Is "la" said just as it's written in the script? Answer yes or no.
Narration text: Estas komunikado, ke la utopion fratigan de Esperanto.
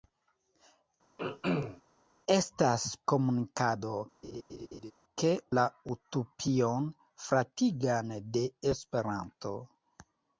yes